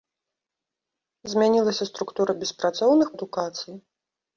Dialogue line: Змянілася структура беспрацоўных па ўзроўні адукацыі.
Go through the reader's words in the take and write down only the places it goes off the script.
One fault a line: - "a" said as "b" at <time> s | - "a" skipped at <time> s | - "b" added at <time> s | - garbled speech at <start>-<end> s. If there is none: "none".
- "па ўзроўні" skipped at 3.1 s